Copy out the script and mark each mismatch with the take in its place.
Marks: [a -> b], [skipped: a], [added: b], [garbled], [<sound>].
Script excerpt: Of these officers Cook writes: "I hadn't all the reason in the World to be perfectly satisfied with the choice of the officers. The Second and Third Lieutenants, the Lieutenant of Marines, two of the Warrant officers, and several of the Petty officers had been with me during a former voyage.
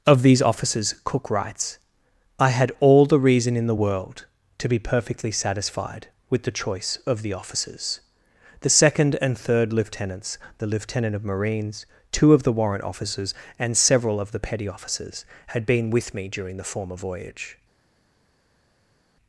Of these officers Cook writes: "I [hadn't -> had] all the reason in the World to be perfectly satisfied with the choice of the officers. The Second and Third Lieutenants, the Lieutenant of Marines, two of the Warrant officers, and several of the Petty officers had been with me during [a -> the] former voyage.